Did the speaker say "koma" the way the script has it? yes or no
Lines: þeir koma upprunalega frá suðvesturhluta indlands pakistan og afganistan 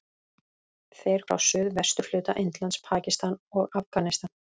no